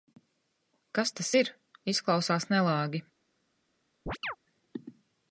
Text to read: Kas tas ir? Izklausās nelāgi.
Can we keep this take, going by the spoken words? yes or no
yes